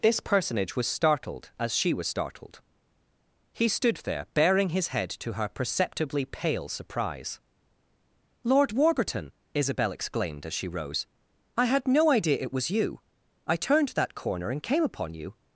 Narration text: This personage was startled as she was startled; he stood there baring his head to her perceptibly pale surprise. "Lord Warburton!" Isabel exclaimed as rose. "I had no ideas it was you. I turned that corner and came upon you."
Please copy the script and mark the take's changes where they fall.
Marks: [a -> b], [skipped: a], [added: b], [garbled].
This personage was startled as she was startled; he stood there baring his head to her perceptibly pale surprise. "Lord Warburton!" Isabel exclaimed as [added: she] rose. "I had no [ideas -> idea] it was you. I turned that corner and came upon you."